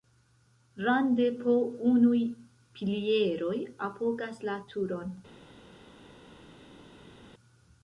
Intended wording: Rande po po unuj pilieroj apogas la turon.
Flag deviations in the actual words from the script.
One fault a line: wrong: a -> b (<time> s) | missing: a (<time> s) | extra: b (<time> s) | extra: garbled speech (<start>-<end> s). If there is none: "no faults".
missing: po (1.5 s)